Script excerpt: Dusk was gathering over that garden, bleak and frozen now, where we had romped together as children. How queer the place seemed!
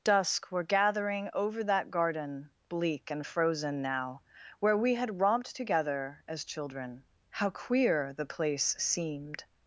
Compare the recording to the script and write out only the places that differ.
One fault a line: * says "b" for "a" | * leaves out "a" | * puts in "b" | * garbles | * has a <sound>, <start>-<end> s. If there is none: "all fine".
* says "were" for "was"